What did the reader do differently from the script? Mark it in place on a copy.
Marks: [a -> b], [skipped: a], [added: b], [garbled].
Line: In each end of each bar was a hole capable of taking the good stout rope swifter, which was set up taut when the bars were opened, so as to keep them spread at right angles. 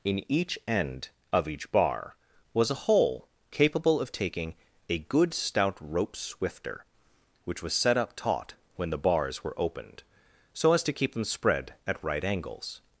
In each end of each bar was a hole capable of taking [the -> a] good stout rope swifter, which was set up taut when the bars were opened, so as to keep them spread at right angles.